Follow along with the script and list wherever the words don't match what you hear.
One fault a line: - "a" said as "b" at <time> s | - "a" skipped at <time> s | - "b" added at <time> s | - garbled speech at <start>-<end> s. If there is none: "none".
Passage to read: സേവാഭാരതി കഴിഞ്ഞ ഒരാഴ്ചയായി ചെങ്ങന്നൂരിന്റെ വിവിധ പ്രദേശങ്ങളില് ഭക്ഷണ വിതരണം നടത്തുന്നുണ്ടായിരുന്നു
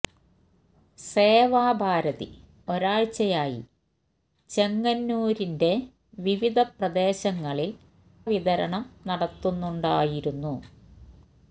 - "കഴിഞ്ഞ" skipped at 2.3 s
- "ഭക്ഷണ" skipped at 7.8 s